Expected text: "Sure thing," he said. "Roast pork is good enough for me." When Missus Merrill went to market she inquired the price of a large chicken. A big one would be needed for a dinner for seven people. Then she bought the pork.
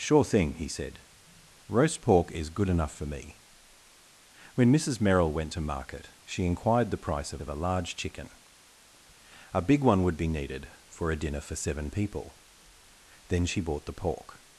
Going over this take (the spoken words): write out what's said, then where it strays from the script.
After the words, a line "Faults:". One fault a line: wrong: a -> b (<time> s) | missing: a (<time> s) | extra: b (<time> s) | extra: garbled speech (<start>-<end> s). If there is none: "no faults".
"Sure thing," he said. "Roast pork is good enough for me." When Missus Merrill went to market she inquired the price of of a large chicken. A big one would be needed for a dinner for seven people. Then she bought the pork.
Faults:
extra: of (7.4 s)